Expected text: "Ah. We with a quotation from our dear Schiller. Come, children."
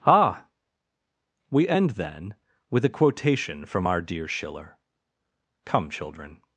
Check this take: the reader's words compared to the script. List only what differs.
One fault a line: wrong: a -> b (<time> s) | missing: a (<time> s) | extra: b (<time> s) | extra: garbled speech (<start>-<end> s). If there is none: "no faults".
extra: end then (1.7 s)